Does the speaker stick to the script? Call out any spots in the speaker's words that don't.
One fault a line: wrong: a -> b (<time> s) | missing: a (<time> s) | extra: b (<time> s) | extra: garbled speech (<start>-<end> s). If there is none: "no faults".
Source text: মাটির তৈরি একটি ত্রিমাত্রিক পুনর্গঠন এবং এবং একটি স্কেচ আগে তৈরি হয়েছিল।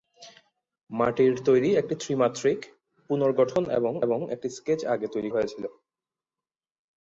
no faults